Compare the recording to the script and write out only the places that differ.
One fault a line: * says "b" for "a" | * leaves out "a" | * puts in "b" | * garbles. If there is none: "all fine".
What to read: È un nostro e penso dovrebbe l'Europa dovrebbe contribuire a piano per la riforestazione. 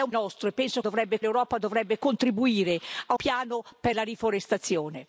all fine